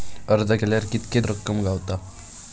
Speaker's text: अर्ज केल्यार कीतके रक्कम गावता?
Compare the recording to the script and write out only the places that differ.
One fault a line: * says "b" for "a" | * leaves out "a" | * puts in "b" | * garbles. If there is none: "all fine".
all fine